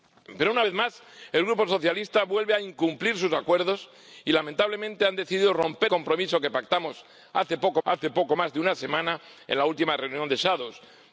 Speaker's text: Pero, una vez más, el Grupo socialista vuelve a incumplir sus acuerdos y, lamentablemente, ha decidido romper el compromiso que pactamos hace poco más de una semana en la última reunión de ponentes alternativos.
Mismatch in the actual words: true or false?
true